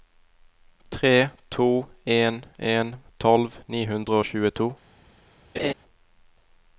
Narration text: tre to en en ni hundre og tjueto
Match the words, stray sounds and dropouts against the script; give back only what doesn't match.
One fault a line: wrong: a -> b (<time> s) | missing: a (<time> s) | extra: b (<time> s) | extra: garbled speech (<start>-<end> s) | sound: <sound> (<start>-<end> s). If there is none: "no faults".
extra: tolv (3.2 s)
sound: laugh (5.5-5.7 s)